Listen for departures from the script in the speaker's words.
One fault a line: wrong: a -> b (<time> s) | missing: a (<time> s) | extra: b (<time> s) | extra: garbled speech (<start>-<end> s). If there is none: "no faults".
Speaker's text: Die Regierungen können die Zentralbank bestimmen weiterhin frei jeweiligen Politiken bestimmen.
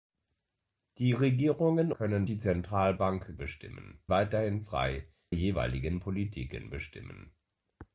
no faults